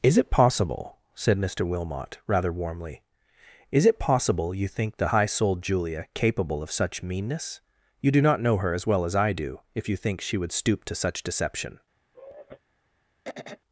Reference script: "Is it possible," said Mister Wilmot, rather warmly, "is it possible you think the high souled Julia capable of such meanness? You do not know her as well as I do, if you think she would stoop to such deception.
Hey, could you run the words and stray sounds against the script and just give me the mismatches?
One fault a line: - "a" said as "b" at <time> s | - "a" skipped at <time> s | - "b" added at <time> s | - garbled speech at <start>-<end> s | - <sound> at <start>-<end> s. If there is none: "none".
- sigh at 12.1-12.6 s
- throat clearing at 13.2-13.6 s